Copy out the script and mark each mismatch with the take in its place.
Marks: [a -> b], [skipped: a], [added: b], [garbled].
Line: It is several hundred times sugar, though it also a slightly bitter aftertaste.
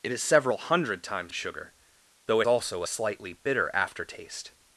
It is several hundred times sugar, though it also a slightly bitter aftertaste.